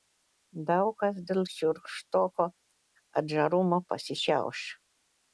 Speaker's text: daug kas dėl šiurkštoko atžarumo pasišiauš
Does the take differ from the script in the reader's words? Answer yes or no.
no